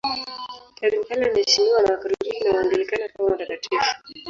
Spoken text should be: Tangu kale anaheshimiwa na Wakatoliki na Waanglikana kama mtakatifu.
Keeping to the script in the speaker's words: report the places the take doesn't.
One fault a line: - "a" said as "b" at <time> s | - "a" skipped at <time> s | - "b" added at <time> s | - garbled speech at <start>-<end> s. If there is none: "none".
none